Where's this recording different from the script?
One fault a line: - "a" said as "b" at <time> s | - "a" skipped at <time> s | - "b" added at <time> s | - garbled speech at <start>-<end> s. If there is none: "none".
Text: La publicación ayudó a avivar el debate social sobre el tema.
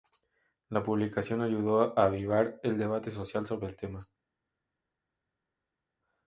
none